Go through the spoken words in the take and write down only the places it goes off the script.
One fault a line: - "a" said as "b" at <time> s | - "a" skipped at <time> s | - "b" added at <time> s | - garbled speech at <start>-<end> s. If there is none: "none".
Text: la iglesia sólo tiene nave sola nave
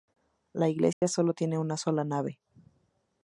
- "nave" said as "una" at 1.6 s